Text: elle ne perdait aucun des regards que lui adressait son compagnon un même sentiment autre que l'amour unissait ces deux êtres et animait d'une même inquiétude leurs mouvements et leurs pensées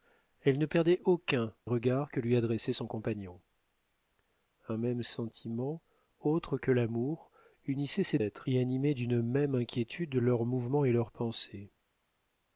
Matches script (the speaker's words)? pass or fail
fail